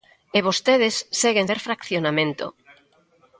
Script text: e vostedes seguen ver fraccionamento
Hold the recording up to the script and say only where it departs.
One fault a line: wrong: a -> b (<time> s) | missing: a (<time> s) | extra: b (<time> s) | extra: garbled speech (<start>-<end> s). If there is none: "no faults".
no faults